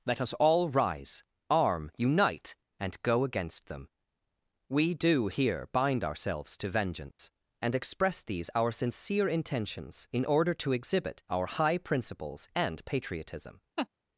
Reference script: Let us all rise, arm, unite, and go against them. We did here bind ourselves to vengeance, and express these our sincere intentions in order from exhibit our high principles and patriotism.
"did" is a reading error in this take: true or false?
true